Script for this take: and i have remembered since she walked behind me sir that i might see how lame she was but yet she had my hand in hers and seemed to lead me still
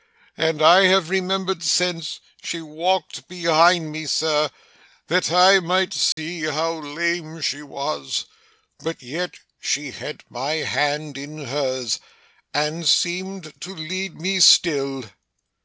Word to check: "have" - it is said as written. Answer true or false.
true